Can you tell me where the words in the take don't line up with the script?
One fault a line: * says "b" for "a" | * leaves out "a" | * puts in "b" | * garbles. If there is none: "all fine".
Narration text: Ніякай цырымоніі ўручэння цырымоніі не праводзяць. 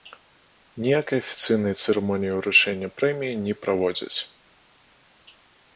* puts in "афіцыйнай"
* says "прэміі" for "цырымоніі"